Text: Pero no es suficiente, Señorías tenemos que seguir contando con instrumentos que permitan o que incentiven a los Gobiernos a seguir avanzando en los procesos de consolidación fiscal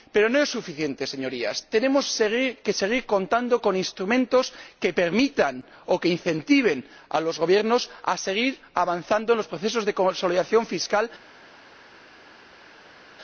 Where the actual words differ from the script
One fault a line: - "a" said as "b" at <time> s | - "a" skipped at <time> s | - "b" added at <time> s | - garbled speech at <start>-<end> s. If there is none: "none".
none